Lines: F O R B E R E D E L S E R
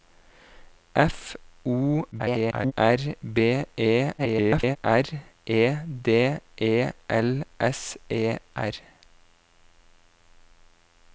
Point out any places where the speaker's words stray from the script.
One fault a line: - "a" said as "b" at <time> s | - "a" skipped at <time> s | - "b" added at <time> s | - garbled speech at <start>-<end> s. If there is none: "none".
- garbled speech at 2.1-2.7 s
- garbled speech at 4.2-4.8 s